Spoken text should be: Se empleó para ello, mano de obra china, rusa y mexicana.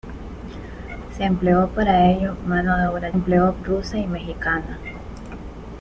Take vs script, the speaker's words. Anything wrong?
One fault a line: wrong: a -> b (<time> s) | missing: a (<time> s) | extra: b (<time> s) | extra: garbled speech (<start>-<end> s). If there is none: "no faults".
wrong: china -> empleó (3.1 s)